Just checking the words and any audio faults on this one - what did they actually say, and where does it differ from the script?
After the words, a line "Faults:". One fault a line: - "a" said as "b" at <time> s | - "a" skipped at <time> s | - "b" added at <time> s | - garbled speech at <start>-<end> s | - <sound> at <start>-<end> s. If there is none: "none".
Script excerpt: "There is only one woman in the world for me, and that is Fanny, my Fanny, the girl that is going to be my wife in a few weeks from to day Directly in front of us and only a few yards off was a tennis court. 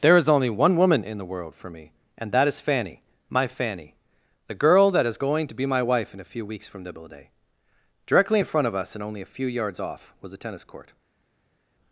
"There is only one woman in the world for me, and that is Fanny, my Fanny, the girl that is going to be my wife in a few weeks from nibble day Directly in front of us and only a few yards off was a tennis court.
Faults:
- "to" said as "nibble" at 6.8 s